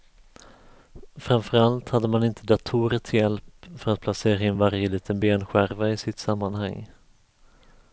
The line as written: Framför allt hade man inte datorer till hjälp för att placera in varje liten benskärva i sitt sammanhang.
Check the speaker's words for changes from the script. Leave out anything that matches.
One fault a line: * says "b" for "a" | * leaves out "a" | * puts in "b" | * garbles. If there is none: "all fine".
all fine